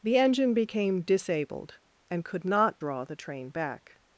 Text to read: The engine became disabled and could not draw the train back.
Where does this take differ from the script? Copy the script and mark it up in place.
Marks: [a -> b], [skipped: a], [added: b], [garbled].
The engine became disabled and could not draw the train back.